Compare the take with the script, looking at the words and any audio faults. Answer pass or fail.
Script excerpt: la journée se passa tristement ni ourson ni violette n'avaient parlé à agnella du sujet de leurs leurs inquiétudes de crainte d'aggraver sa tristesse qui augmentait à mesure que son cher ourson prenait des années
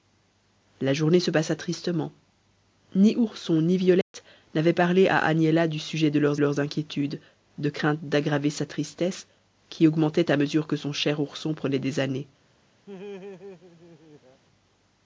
fail